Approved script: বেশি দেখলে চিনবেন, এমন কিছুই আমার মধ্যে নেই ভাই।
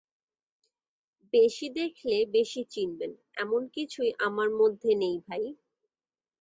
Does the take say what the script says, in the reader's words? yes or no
no